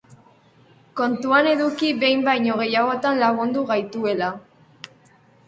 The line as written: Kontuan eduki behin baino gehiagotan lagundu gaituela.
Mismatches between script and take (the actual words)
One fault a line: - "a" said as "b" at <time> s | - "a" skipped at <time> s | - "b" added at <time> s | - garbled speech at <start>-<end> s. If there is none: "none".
none